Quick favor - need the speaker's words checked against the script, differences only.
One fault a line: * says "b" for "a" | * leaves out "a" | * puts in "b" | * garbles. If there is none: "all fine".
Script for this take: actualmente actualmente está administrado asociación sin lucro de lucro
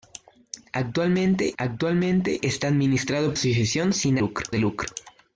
all fine